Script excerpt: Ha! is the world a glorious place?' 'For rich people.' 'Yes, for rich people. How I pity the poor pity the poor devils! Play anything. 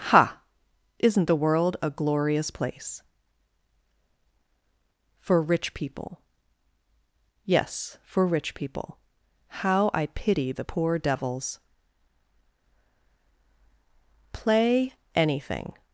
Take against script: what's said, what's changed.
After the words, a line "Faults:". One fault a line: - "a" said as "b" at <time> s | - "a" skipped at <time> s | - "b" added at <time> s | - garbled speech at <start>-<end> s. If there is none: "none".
Ha! isn't the world a glorious place?' 'For rich people.' 'Yes, for rich people. How I pity the poor devils! Play anything.
Faults:
- "is" said as "isn't" at 1.0 s
- "pity the poor" skipped at 11.0 s